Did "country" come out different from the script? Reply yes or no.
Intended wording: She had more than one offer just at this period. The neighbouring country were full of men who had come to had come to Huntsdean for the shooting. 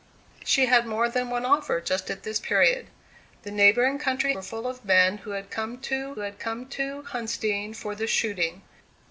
no